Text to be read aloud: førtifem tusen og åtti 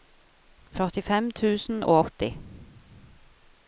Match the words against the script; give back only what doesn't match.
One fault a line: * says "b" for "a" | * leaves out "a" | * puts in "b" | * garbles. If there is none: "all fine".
all fine